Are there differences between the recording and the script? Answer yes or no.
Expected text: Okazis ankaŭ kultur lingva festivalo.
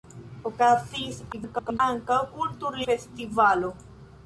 yes